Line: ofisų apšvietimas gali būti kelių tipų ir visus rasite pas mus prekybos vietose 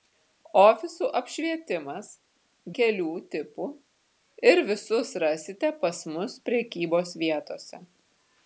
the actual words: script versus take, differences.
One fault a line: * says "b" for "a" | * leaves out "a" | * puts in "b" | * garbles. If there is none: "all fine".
* leaves out "gali būti"